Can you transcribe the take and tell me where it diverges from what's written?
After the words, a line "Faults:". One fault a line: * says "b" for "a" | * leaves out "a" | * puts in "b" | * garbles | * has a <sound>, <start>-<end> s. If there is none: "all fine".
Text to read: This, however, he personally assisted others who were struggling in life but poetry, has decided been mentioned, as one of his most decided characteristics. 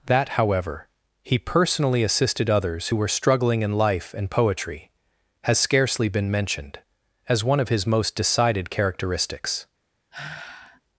That, however, he personally assisted others who were struggling in life and poetry, has scarcely been mentioned, as one of his most decided characteristics.
Faults:
* says "That" for "This"
* says "and" for "but"
* says "scarcely" for "decided"
* has a sigh, 10.1-10.8 s